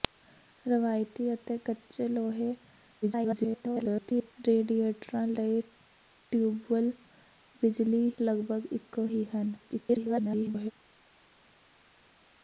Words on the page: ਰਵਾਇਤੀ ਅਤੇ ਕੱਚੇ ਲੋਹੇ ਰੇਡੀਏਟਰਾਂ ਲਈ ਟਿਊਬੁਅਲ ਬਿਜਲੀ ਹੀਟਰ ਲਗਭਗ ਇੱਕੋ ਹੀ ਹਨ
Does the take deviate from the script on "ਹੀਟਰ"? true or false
true